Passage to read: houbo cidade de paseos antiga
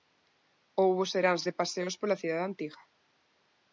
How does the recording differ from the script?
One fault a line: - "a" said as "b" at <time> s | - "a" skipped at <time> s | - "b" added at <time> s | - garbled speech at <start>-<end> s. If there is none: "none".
- "cidade" said as "seráns" at 1.1 s
- "pola cidade" added at 2.0 s